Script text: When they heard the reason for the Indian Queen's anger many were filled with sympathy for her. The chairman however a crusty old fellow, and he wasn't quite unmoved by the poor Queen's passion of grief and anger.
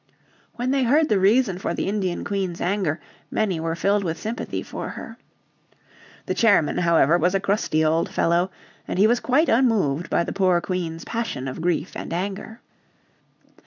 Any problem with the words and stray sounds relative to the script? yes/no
yes